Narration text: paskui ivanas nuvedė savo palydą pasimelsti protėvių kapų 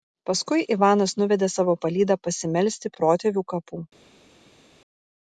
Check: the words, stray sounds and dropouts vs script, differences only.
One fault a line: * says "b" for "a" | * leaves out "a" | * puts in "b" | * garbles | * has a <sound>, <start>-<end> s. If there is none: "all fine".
all fine